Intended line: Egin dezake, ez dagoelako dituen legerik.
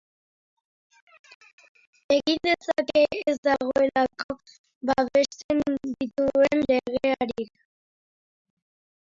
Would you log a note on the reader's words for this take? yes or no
yes